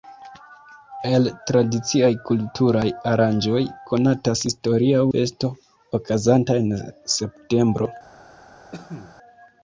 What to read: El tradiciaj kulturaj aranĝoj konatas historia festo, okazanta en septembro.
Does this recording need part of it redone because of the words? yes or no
no